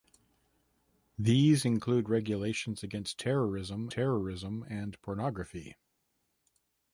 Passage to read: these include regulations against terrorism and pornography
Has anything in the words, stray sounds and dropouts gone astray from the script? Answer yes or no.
yes